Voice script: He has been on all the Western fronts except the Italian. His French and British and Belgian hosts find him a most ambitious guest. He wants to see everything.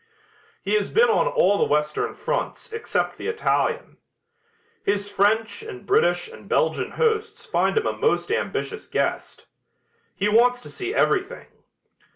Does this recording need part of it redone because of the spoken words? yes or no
no